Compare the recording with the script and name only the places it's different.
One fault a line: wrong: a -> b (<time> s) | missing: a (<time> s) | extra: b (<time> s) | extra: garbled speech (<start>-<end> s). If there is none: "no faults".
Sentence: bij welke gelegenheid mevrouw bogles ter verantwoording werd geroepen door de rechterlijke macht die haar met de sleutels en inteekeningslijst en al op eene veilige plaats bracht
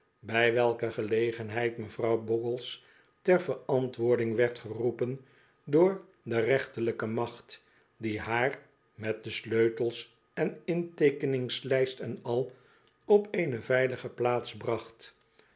no faults